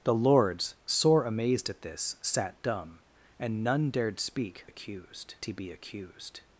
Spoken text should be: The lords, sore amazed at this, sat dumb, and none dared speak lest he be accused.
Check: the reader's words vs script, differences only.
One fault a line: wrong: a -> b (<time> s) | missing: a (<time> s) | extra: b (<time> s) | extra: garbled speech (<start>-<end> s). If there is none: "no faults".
wrong: lest -> accused (4.6 s)